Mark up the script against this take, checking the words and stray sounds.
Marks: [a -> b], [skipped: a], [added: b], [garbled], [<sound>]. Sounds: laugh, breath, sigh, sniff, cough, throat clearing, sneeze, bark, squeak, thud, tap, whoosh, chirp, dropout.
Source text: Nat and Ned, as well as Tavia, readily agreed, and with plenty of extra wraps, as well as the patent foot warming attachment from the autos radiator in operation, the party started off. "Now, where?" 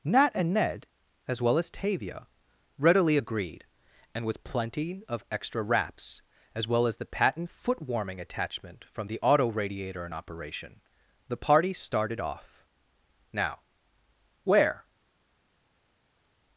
Nat and Ned, as well as Tavia, readily agreed, and with plenty of extra wraps, as well as the patent foot warming attachment from the [autos -> auto] radiator in operation, the party started off. "Now, where?"